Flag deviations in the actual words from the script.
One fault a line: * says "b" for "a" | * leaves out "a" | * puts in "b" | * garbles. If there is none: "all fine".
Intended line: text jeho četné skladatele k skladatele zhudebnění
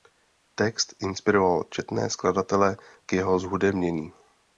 * says "inspiroval" for "jeho"
* says "jeho" for "skladatele"